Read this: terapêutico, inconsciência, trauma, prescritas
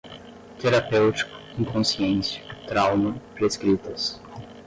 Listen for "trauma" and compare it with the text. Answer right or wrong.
right